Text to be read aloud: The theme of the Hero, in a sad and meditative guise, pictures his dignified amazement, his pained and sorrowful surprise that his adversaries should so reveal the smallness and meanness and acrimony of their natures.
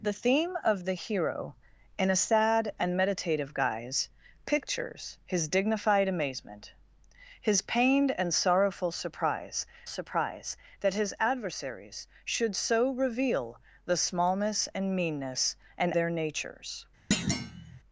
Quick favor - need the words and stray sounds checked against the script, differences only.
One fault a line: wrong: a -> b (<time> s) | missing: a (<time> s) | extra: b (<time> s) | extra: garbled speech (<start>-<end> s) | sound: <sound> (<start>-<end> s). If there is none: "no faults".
extra: surprise (9.9 s)
missing: acrimony of (15.9 s)
sound: thud (17.1-17.8 s)